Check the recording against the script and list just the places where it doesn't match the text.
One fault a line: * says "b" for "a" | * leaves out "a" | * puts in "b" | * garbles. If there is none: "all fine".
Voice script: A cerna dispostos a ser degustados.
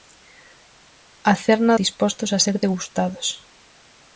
all fine